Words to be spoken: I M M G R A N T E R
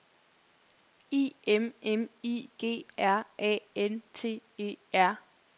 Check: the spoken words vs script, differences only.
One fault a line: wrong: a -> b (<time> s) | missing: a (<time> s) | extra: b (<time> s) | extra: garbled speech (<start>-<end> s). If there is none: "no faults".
extra: I (2.2 s)